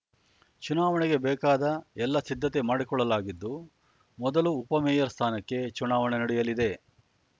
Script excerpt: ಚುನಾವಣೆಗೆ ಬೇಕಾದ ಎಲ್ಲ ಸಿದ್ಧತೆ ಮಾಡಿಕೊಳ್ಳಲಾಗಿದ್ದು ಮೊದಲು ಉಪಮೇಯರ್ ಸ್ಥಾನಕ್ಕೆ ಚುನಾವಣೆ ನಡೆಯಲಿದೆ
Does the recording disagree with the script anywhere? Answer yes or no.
no